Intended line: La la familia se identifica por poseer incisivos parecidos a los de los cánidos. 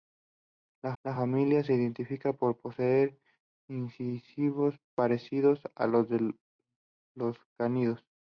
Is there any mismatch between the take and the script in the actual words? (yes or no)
no